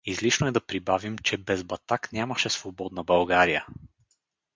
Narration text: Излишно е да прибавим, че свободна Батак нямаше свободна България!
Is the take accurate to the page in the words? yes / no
no